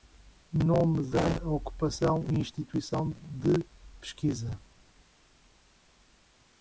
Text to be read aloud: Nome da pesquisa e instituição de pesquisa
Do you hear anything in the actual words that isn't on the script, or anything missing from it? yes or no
yes